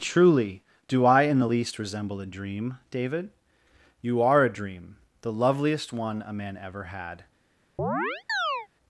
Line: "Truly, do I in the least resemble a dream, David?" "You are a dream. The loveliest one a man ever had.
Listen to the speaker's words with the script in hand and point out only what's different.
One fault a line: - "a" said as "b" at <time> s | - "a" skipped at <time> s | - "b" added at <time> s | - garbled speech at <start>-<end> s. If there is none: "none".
none